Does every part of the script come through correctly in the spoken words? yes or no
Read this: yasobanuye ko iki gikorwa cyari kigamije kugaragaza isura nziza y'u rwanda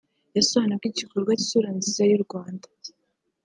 no